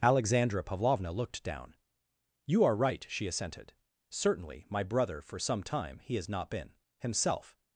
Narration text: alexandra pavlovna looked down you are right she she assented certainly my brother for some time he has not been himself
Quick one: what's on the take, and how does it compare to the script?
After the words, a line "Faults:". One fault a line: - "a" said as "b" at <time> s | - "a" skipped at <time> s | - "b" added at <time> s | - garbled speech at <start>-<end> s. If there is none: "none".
alexandra pavlovna looked down you are right she assented certainly my brother for some time he has not been himself
Faults:
- "she" skipped at 3.3 s